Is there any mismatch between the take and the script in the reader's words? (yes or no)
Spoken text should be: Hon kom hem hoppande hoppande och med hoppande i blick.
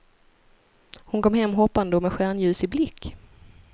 yes